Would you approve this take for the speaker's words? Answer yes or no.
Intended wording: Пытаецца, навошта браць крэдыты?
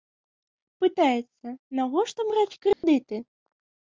yes